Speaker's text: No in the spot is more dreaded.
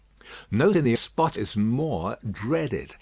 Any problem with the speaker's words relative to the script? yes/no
no